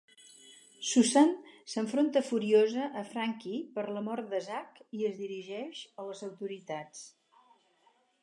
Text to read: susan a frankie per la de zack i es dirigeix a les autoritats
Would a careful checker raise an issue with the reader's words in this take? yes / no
yes